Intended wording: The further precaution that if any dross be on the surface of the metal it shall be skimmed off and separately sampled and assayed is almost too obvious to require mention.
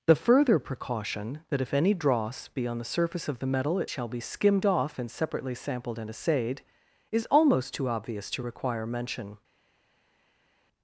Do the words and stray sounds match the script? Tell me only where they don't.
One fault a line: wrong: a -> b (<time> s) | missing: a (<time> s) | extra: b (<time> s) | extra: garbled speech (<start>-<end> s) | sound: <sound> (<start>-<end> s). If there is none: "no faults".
no faults